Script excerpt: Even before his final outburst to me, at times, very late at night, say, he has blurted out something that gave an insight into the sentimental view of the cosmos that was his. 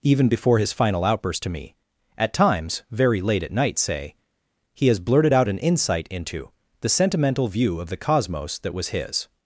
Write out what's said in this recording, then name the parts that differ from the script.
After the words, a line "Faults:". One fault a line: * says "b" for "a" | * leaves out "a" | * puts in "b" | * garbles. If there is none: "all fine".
Even before his final outburst to me, at times, very late at night, say, he has blurted out an insight into the sentimental view of the cosmos that was his.
Faults:
* leaves out "something that gave"